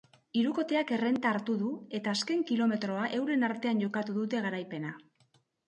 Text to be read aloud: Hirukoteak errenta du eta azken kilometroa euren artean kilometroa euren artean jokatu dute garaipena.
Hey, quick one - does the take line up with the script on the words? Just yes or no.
no